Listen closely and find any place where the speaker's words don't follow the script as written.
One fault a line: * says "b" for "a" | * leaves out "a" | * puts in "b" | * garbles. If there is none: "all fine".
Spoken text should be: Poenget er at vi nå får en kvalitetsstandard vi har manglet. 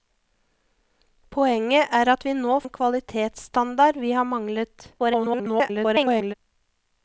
* leaves out "får"
* garbles